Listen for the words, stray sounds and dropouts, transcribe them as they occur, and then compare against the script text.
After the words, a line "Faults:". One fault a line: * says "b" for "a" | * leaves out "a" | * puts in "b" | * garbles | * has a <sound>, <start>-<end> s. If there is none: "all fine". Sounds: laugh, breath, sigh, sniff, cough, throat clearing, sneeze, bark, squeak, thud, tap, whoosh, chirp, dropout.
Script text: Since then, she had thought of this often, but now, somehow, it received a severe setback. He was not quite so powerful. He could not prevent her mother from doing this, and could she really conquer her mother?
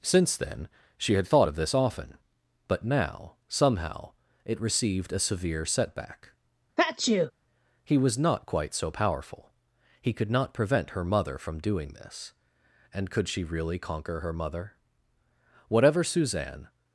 Since then, she had thought of this often, but now, somehow, it received a severe setback. He was not quite so powerful. He could not prevent her mother from doing this, and could she really conquer her mother? Whatever Suzanne
Faults:
* has a sneeze, 6.8-7.3 s
* puts in "Whatever Suzanne"